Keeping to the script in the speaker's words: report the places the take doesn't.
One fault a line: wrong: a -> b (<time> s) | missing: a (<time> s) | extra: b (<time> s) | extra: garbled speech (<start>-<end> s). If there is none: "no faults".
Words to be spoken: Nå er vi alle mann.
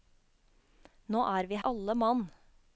no faults